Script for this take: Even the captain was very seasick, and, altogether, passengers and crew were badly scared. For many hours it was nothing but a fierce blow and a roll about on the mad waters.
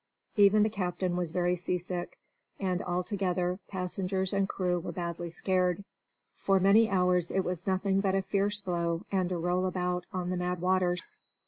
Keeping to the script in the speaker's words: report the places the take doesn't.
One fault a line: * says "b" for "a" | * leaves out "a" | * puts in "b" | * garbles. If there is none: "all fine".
all fine